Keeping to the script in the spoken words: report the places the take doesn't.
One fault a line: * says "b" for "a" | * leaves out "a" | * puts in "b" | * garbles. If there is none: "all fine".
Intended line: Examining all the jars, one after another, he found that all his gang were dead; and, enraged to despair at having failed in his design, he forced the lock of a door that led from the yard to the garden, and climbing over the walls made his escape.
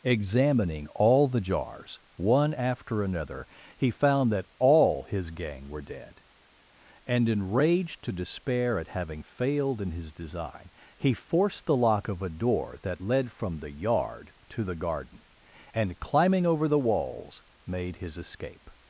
all fine